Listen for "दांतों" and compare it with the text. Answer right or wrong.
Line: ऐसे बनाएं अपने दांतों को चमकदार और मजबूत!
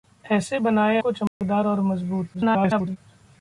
wrong